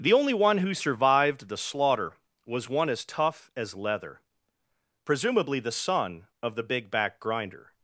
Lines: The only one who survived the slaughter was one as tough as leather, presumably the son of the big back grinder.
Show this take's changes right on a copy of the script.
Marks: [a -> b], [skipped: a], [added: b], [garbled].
The only one who survived the slaughter was one as tough as leather, presumably the son of the big back grinder.